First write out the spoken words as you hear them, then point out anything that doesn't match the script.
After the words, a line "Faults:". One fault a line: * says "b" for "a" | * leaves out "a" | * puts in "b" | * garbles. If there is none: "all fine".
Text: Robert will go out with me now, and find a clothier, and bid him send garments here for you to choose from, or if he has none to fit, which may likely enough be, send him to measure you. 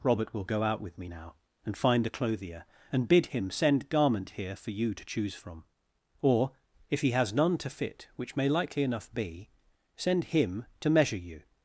Robert will go out with me now, and find a clothier, and bid him send garment here for you to choose from, or if he has none to fit, which may likely enough be, send him to measure you.
Faults:
* says "garment" for "garments"